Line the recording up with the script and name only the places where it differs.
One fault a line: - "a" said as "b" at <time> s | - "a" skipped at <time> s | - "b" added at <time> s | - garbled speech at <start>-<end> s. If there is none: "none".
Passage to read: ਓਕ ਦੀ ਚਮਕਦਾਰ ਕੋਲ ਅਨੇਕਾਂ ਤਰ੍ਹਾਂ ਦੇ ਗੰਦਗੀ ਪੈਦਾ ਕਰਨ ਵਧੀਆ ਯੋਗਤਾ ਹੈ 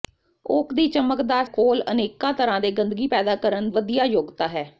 none